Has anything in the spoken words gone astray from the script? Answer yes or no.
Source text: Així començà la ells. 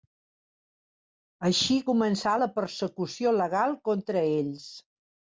yes